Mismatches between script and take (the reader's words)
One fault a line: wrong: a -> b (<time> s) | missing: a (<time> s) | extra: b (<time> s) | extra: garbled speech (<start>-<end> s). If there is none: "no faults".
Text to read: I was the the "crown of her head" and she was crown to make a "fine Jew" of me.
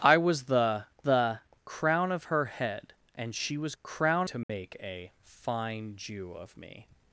no faults